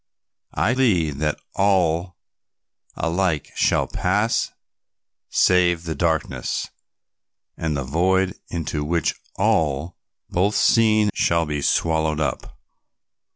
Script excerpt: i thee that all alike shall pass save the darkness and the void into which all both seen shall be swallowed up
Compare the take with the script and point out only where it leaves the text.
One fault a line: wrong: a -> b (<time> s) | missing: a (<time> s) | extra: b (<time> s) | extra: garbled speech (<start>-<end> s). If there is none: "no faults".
no faults